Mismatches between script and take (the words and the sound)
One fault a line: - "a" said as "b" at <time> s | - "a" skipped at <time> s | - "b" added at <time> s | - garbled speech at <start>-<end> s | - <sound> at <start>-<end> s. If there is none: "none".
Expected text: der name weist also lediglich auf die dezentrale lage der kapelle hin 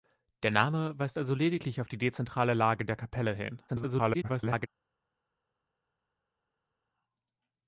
- garbled speech at 3.7-4.7 s